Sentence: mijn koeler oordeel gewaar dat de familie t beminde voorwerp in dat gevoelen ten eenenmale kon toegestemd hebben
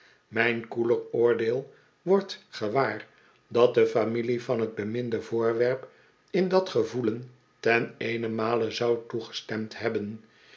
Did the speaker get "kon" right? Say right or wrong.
wrong